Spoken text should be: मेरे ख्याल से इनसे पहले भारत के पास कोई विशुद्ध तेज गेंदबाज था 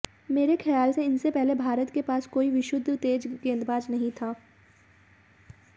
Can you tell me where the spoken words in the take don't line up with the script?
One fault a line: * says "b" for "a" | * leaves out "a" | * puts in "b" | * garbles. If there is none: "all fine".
* puts in "नहीं"